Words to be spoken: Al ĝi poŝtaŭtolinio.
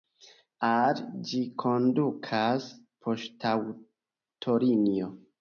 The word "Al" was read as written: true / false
true